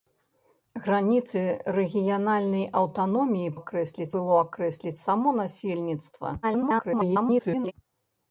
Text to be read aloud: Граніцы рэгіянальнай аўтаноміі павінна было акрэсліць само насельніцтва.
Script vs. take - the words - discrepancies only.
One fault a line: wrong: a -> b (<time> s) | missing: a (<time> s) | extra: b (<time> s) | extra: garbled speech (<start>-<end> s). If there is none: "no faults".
wrong: павінна -> акрэсліць (3.6 s)
extra: garbled speech (6.4-7.7 s)